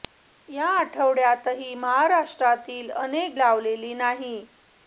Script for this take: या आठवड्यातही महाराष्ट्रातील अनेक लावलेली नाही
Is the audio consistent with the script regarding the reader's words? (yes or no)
yes